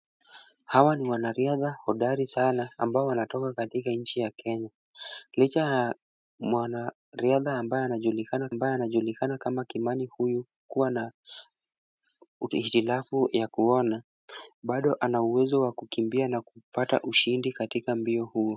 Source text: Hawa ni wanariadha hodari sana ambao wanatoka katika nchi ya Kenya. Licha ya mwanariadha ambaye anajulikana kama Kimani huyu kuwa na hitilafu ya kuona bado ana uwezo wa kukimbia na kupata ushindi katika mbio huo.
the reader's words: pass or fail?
fail